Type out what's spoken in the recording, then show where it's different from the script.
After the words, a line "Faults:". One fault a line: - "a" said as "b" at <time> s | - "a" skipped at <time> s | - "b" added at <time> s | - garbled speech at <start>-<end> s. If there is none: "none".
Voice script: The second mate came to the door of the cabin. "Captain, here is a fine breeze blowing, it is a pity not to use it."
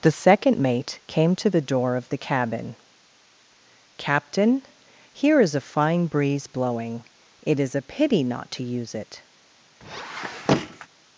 The second mate came to the door of the cabin. "Captain, here is a fine breeze blowing, it is a pity not to use it."
Faults:
none